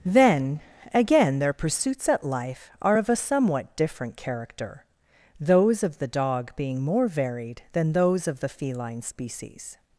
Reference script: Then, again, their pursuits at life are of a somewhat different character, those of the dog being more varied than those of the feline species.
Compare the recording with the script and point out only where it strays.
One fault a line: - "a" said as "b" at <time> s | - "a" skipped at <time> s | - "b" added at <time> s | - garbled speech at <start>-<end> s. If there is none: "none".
none